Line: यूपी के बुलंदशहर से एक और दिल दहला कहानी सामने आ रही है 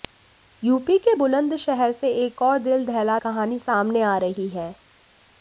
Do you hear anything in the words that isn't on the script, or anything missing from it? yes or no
no